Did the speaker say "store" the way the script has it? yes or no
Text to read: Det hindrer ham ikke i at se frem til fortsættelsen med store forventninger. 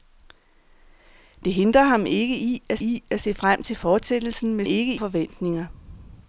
no